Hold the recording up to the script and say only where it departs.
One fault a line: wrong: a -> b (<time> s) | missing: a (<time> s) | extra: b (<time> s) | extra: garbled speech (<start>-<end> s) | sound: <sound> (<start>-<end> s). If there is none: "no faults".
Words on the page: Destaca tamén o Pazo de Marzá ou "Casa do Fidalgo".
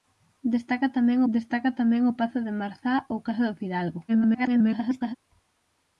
extra: destaca tamén (1.3 s)
extra: garbled speech (4.1-5.1 s)